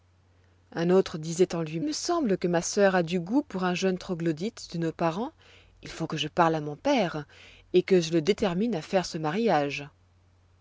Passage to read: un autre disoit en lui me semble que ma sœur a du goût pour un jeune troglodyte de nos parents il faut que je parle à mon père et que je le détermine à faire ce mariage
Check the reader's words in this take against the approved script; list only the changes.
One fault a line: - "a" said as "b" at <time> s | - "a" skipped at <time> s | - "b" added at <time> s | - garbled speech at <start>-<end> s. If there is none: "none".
none